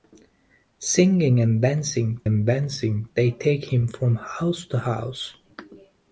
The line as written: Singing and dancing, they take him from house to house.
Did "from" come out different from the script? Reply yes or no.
no